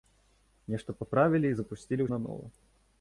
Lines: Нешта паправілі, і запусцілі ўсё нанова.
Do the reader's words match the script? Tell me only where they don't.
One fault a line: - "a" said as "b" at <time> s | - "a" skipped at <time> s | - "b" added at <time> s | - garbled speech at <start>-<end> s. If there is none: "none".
- "ўсё" skipped at 2.1 s